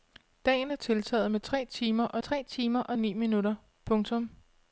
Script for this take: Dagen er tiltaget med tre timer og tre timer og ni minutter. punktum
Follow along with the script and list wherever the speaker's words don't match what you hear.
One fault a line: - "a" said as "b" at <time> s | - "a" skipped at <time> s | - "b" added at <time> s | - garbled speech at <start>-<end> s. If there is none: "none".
none